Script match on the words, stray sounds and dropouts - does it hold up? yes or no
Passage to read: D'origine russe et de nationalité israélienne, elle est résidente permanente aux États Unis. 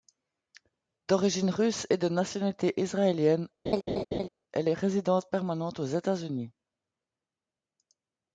no